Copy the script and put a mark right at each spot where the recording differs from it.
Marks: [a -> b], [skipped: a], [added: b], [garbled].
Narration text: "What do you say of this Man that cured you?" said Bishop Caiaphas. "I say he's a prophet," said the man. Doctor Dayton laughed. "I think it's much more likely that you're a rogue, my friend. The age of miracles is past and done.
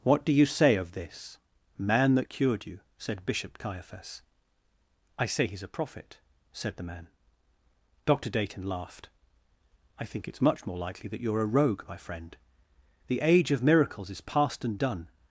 "What do you say of this Man that cured you?" said Bishop Caiaphas. "I say he's a prophet," said the man. Doctor Dayton laughed. "I think it's much more likely that you're a rogue, my friend. The age of miracles is past and done.